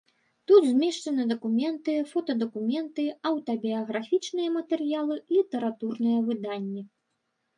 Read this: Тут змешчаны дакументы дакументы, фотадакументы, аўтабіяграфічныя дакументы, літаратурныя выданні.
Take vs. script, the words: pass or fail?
fail